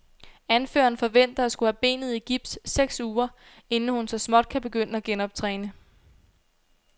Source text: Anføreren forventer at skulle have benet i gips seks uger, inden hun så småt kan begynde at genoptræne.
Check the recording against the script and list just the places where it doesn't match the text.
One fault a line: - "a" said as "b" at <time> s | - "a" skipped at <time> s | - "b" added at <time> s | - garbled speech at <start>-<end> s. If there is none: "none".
none